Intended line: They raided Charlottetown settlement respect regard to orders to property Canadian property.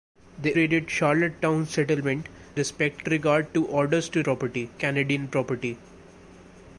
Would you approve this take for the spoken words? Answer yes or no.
yes